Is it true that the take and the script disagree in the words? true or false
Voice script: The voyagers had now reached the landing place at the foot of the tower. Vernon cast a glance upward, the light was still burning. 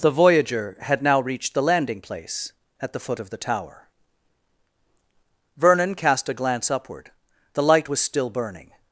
true